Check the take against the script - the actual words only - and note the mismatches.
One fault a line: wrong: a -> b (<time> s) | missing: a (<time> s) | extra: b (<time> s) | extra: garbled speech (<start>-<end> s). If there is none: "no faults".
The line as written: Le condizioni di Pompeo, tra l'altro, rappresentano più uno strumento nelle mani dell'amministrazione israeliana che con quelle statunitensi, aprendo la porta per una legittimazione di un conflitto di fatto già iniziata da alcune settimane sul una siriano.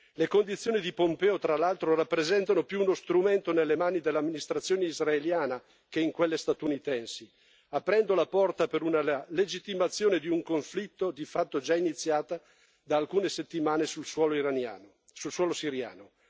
wrong: con -> in (6.0 s)
wrong: una -> suolo (14.1 s)